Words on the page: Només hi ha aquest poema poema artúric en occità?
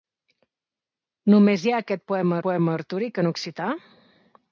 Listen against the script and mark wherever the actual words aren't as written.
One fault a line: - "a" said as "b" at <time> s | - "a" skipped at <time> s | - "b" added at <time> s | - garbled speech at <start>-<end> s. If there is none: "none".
none